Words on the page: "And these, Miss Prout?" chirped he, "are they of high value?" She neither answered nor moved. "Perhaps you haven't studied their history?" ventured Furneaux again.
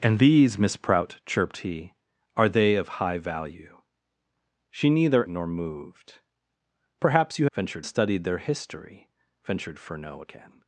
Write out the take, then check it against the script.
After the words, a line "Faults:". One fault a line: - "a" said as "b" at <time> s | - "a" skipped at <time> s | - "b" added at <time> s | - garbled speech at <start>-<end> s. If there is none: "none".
"And these, Miss Prout?" chirped he, "are they of high value?" She neither nor moved. "Perhaps you ventured studied their history?" ventured Furneaux again.
Faults:
- "answered" skipped at 5.3 s
- "haven't" said as "ventured" at 7.5 s